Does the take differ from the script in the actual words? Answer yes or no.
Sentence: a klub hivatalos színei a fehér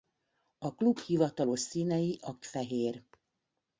no